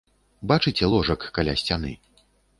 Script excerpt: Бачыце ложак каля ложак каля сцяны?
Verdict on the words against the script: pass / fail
fail